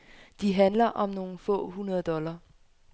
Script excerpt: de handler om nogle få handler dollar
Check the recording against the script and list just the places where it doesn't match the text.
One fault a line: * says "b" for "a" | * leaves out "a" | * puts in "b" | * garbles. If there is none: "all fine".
* says "hundrede" for "handler"